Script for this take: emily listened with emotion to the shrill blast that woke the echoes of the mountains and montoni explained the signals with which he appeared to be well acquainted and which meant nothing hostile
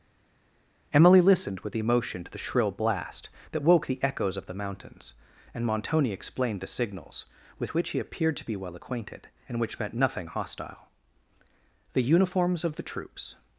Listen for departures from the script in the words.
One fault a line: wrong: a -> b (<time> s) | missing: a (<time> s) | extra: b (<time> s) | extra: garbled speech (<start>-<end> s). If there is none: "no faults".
extra: the uniforms of the troops (11.9 s)